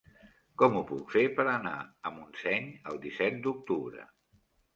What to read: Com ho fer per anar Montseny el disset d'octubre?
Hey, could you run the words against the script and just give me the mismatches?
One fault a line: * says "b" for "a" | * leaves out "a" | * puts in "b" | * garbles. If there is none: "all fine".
* puts in "puc"
* puts in "a"